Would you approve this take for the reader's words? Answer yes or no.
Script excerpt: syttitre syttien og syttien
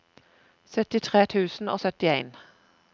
no